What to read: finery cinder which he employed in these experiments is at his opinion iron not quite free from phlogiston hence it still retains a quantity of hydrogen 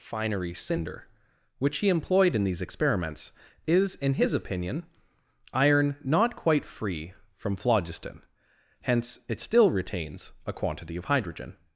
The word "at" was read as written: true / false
false